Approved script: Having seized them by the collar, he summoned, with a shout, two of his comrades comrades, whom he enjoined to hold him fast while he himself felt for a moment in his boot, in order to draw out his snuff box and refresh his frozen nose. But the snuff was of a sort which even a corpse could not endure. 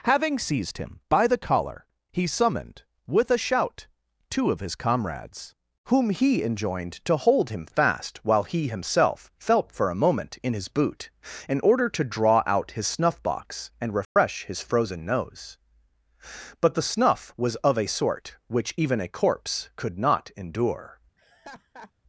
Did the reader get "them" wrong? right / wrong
wrong